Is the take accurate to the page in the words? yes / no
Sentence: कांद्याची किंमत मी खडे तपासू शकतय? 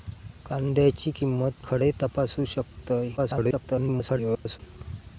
no